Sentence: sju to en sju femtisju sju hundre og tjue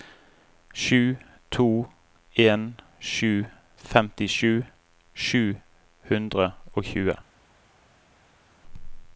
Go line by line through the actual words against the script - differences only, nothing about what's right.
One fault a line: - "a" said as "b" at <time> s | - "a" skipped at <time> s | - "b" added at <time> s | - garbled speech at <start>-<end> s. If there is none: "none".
none